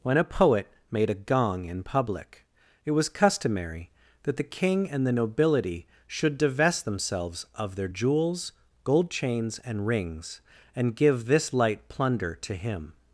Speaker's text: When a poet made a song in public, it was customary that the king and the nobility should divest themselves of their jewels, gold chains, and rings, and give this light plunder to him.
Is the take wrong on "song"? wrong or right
wrong